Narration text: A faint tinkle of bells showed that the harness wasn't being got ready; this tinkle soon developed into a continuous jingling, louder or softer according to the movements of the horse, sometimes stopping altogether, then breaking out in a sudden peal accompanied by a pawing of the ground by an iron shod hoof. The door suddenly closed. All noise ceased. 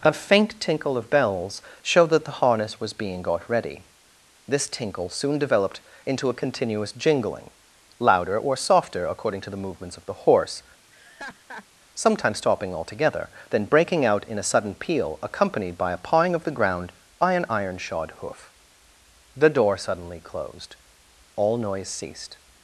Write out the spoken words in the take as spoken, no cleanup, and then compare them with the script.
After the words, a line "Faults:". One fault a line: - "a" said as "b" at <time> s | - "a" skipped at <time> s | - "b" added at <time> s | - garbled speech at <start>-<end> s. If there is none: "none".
A faint tinkle of bells showed that the harness was being got ready; this tinkle soon developed into a continuous jingling, louder or softer according to the movements of the horse, sometimes stopping altogether, then breaking out in a sudden peal accompanied by a pawing of the ground by an iron shod hoof. The door suddenly closed. All noise ceased.
Faults:
- "wasn't" said as "was" at 2.8 s